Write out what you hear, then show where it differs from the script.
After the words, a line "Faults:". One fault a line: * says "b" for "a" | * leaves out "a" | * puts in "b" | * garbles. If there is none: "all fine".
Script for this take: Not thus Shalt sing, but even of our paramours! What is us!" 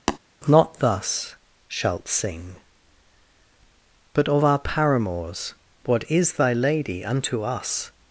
Not thus Shalt sing, but of our paramours! What is thy Lady unto us!"
Faults:
* leaves out "even"
* puts in "thy Lady unto"